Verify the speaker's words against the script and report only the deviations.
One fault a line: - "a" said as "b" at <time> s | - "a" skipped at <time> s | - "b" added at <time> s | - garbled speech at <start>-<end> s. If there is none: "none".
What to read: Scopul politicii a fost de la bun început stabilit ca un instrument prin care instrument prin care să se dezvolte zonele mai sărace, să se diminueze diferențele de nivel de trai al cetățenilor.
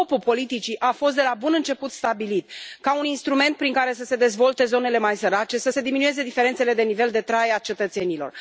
- "instrument prin care" skipped at 3.9 s